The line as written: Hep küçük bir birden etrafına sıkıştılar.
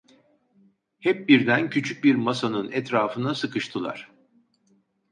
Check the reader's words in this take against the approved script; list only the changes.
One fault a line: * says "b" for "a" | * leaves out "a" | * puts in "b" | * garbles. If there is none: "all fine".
* puts in "birden"
* says "masanın" for "birden"